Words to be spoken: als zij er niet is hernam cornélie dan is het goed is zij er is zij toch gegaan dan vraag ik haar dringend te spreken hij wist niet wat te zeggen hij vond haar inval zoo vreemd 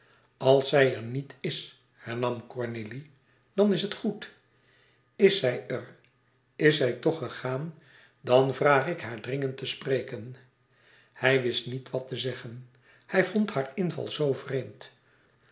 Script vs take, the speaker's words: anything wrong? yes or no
no